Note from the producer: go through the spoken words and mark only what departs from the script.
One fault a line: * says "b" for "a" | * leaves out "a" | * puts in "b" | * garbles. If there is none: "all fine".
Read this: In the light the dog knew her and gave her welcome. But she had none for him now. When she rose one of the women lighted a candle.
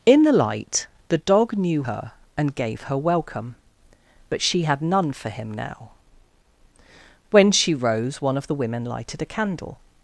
all fine